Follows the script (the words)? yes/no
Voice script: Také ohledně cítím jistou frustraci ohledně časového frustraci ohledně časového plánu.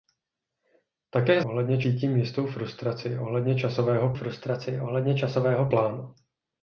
yes